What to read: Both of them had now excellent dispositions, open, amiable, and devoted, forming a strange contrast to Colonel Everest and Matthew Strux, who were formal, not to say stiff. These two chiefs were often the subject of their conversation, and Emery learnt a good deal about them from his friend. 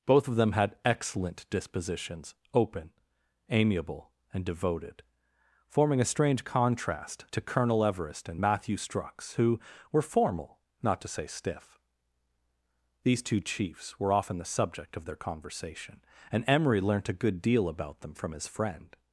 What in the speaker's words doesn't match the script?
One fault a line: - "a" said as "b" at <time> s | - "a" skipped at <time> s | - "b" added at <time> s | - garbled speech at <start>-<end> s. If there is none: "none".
- "now" skipped at 0.8 s